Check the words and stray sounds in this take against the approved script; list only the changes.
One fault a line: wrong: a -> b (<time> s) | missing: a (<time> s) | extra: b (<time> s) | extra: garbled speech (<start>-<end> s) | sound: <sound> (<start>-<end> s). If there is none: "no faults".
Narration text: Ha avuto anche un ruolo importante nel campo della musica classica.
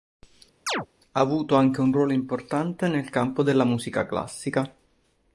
sound: chirp (0.7-0.9 s)